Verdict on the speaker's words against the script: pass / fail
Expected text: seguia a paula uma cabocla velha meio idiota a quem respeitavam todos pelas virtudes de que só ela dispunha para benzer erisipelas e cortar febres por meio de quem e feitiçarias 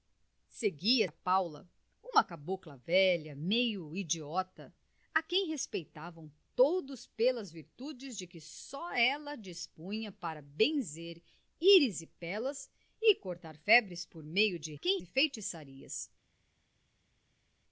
pass